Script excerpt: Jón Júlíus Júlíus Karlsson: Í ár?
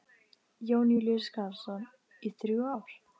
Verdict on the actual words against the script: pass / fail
fail